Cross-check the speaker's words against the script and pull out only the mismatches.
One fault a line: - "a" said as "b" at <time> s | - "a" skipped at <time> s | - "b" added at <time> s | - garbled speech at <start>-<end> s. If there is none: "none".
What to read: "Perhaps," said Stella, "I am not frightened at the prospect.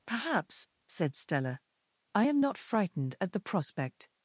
none